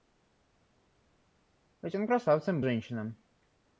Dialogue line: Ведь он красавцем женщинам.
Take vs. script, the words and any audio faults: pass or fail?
pass